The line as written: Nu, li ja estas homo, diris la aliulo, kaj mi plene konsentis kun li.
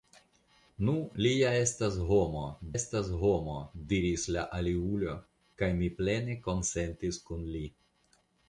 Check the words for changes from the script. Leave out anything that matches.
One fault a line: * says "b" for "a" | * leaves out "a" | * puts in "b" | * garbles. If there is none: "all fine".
* puts in "estas homo"